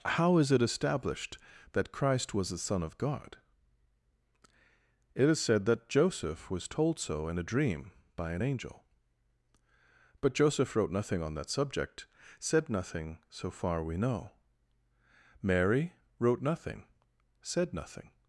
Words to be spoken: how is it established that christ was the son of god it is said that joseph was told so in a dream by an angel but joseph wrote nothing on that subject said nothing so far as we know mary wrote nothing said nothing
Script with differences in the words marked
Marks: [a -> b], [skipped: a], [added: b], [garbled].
how is it established that christ was the son of god it is said that joseph was told so in a dream by an angel but joseph wrote nothing on that subject said nothing so far [skipped: as] we know mary wrote nothing said nothing